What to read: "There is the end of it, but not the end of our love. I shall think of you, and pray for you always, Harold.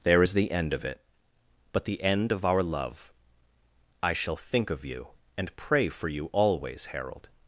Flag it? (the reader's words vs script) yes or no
yes